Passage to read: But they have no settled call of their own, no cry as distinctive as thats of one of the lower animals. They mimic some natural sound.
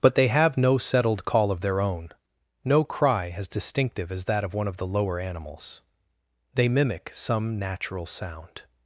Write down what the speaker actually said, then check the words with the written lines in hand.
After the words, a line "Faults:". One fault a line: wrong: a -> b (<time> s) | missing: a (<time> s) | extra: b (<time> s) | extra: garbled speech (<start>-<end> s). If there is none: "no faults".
But they have no settled call of their own, no cry as distinctive as that of one of the lower animals. They mimic some natural sound.
Faults:
wrong: thats -> that (4.2 s)